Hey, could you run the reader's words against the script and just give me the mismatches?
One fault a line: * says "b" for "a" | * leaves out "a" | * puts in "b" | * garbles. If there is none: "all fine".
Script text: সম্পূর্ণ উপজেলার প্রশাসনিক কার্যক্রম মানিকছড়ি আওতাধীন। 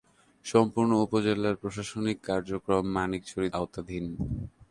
all fine